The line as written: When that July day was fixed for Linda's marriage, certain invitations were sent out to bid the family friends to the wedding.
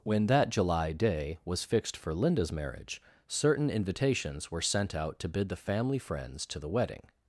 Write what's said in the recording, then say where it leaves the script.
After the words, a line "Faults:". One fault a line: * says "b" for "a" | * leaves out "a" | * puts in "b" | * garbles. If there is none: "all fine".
When that July day was fixed for Linda's marriage, certain invitations were sent out to bid the family friends to the wedding.
Faults:
all fine